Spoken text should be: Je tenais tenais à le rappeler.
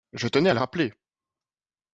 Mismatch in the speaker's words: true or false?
true